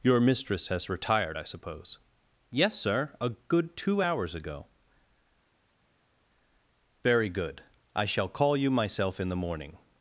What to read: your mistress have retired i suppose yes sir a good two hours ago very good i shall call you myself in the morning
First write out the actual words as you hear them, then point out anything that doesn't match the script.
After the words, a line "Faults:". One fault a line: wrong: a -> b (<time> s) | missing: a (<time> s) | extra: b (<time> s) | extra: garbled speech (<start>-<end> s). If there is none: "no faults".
your mistress has retired i suppose yes sir a good two hours ago very good i shall call you myself in the morning
Faults:
wrong: have -> has (0.7 s)